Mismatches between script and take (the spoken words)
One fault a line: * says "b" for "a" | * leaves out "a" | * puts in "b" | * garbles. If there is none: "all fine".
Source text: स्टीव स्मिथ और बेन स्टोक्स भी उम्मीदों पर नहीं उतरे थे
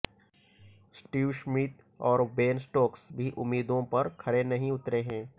* puts in "खरे"
* says "हैं" for "थे"